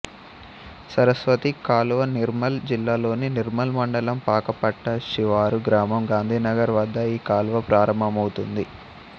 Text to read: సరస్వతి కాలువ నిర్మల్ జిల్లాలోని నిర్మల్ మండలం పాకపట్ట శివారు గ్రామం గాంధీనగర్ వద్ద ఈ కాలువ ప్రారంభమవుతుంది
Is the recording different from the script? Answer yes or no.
no